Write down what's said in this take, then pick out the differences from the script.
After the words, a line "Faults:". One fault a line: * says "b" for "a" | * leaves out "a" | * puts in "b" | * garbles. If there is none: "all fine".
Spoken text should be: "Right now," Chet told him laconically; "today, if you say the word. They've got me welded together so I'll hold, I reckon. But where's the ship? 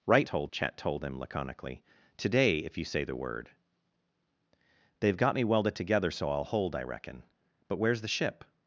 "Right told," Chet told him laconically; "today, if you say the word. They've got me welded together so I'll hold, I reckon. But where's the ship?
Faults:
* says "told" for "now"